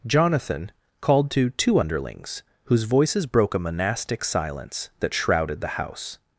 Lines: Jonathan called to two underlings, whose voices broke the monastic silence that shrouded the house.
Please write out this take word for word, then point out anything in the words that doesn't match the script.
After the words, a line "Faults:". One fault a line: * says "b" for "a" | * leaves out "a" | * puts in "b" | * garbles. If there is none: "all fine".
Jonathan called to two underlings, whose voices broke a monastic silence that shrouded the house.
Faults:
* says "a" for "the"